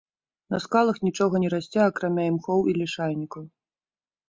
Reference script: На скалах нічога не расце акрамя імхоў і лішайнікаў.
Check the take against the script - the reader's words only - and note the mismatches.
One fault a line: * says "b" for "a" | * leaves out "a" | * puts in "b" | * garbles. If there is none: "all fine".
all fine